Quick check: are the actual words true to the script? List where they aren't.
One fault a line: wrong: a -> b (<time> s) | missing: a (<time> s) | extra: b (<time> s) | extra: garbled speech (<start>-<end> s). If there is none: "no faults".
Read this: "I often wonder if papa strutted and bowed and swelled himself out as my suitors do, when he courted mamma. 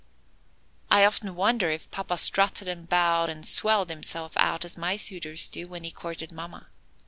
no faults